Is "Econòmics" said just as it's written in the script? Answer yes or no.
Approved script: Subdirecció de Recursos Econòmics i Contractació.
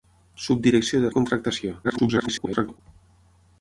no